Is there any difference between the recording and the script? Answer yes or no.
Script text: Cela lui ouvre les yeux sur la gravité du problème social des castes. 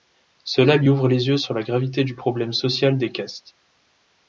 no